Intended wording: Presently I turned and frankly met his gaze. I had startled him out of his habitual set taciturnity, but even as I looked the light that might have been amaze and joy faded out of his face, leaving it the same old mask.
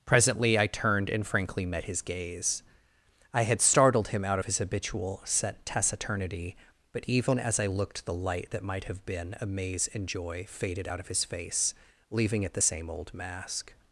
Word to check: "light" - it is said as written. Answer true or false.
true